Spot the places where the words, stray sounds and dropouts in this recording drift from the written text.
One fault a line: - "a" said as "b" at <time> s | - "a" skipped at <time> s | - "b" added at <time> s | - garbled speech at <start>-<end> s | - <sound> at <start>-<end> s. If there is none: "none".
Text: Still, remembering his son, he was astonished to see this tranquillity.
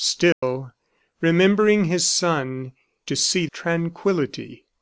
- dropout at 0.3-0.4 s
- "he was astonished" skipped at 2.7 s
- "this" skipped at 3.5 s